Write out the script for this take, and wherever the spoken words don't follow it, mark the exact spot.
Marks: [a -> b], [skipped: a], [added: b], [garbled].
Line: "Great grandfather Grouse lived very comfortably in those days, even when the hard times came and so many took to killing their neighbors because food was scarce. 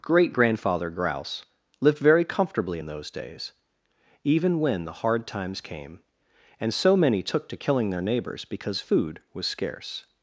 "Great grandfather Grouse lived very comfortably in those days, even when the hard times came and so many took to killing their neighbors because food was scarce.